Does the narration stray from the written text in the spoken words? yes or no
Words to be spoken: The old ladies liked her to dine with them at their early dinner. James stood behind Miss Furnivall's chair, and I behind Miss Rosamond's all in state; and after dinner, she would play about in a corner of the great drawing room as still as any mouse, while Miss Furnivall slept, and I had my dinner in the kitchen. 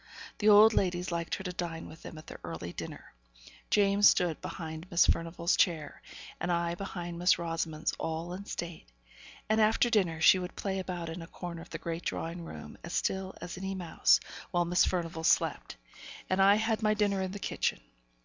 no